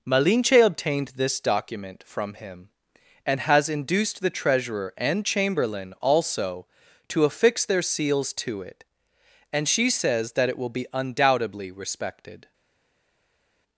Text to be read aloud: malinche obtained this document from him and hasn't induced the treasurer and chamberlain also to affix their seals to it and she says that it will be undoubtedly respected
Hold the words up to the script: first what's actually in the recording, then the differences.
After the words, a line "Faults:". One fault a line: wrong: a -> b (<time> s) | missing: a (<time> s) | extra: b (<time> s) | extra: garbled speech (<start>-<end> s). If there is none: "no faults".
malinche obtained this document from him and has induced the treasurer and chamberlain also to affix their seals to it and she says that it will be undoubtedly respected
Faults:
wrong: hasn't -> has (3.4 s)